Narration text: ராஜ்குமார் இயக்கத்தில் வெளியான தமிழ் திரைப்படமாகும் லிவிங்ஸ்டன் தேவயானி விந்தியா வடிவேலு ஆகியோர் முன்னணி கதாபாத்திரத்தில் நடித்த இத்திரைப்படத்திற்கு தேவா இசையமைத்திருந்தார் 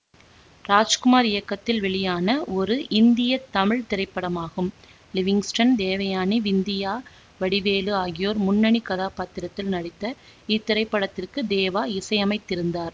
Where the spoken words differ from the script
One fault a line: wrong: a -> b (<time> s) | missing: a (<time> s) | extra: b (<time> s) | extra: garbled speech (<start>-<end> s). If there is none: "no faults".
extra: ஒரு இந்திய (2.5 s)